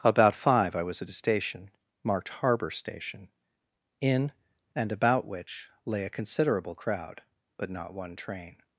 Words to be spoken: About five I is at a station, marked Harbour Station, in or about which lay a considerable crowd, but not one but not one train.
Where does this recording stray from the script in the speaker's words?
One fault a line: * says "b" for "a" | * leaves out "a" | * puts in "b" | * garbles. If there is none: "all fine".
* says "was" for "is"
* says "and" for "or"
* leaves out "but not one"